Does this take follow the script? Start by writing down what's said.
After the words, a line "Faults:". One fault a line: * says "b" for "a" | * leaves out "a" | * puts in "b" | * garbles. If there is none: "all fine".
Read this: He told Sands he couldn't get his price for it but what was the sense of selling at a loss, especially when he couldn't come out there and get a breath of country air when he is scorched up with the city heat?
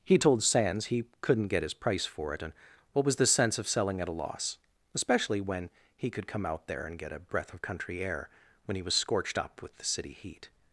He told Sands he couldn't get his price for it and what was the sense of selling at a loss, especially when he could come out there and get a breath of country air when he was scorched up with the city heat?
Faults:
* says "and" for "but"
* says "could" for "couldn't"
* says "was" for "is"